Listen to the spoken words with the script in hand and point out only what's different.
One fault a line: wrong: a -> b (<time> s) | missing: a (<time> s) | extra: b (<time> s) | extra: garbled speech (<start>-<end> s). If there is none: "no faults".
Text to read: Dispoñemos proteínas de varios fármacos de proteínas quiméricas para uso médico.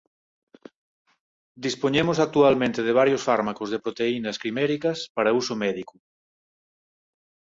wrong: proteínas -> actualmente (2.2 s)